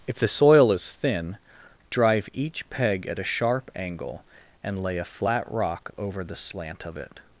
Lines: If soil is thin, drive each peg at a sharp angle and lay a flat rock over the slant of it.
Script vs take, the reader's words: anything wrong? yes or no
yes